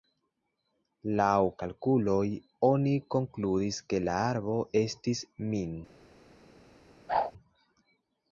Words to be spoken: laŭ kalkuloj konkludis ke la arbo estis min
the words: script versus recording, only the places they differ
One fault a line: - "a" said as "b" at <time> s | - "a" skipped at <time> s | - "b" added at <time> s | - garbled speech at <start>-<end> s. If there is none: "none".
- "oni" added at 2.7 s